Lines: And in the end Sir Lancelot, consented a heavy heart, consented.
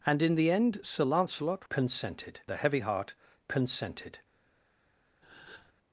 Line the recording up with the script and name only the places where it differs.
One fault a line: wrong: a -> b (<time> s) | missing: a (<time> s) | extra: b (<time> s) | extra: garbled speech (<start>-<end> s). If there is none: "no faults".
no faults